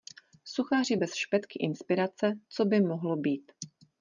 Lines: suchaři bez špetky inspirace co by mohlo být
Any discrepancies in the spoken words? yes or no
no